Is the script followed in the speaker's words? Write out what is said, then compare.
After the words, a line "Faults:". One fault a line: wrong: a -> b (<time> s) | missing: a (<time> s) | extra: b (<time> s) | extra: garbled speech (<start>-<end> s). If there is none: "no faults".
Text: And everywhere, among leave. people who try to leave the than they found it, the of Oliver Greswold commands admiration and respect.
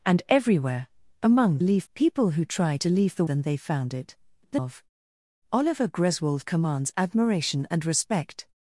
And everywhere, among leave. people who try to leave the than they found it, the of Oliver Greswold commands admiration and respect.
Faults:
no faults